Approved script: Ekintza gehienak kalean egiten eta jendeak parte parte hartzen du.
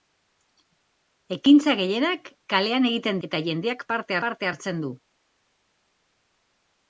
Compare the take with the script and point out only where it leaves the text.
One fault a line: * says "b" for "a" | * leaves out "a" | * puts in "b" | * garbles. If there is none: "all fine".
all fine